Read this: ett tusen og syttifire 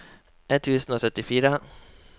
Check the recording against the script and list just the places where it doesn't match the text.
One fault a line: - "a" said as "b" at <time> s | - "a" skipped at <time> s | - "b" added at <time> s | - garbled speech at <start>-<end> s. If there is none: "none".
none